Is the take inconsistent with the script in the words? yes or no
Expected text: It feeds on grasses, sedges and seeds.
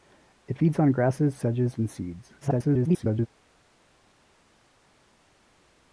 yes